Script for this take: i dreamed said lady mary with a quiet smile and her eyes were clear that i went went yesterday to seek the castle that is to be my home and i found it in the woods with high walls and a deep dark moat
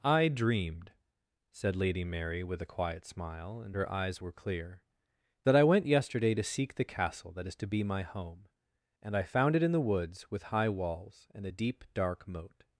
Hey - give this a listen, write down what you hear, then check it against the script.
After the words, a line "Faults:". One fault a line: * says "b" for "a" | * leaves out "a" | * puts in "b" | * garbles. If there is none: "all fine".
i dreamed said lady mary with a quiet smile and her eyes were clear that i went yesterday to seek the castle that is to be my home and i found it in the woods with high walls and a deep dark moat
Faults:
* leaves out "went"